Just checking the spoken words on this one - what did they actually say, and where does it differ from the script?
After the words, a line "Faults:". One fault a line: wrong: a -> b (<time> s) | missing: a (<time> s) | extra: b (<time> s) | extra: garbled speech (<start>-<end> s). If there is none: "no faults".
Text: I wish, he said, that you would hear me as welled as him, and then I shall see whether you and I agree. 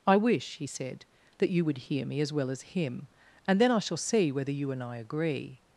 I wish, he said, that you would hear me as well as him, and then I shall see whether you and I agree.
Faults:
wrong: welled -> well (2.3 s)